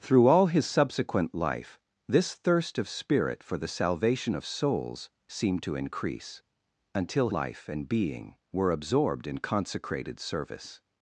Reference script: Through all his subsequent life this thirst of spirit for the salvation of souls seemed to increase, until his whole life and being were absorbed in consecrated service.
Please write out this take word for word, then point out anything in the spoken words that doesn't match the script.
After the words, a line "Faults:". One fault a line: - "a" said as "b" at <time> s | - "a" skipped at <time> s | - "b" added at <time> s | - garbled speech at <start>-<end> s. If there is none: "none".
Through all his subsequent life this thirst of spirit for the salvation of souls seemed to increase, until life and being were absorbed in consecrated service.
Faults:
- "his whole" skipped at 7.3 s